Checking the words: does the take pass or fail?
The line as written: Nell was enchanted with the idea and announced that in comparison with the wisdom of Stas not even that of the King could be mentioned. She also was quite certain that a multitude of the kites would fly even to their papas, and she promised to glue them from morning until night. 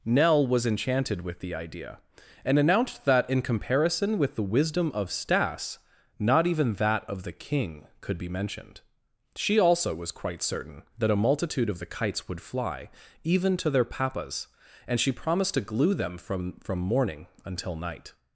fail